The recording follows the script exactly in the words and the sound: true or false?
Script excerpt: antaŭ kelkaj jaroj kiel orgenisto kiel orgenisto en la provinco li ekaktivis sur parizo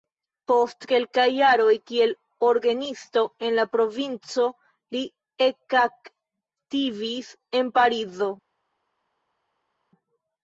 false